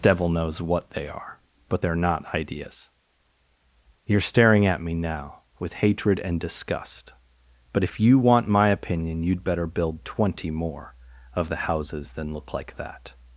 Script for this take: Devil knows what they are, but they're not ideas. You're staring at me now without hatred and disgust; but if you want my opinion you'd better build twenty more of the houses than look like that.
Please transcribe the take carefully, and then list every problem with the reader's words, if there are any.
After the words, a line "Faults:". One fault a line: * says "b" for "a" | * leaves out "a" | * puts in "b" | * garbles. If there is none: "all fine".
Devil knows what they are, but they're not ideas. You're staring at me now with hatred and disgust; but if you want my opinion you'd better build twenty more of the houses than look like that.
Faults:
* says "with" for "without"